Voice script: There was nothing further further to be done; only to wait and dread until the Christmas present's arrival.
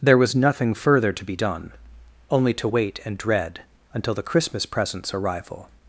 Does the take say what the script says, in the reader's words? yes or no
no